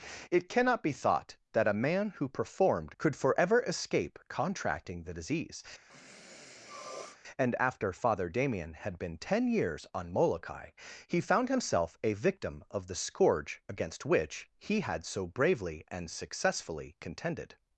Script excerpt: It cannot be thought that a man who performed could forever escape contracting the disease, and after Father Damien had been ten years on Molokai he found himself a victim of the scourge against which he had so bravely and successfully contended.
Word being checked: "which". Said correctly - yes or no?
yes